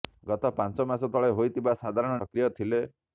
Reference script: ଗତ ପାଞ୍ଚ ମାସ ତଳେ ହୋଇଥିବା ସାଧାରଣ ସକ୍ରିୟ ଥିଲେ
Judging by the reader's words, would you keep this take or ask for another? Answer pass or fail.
pass